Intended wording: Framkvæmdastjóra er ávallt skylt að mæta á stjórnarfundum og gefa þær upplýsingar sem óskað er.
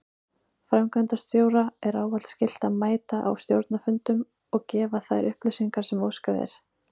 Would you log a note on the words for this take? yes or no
no